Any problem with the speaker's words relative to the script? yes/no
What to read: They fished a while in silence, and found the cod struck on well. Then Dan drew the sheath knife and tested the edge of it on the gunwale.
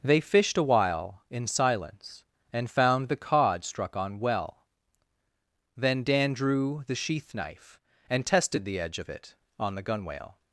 no